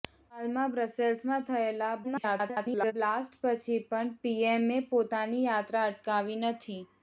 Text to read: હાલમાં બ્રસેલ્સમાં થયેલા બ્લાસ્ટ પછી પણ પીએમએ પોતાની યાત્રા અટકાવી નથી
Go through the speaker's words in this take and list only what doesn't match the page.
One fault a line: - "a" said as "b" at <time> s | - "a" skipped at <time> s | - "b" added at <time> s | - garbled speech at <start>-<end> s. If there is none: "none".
- garbled speech at 2.0-2.9 s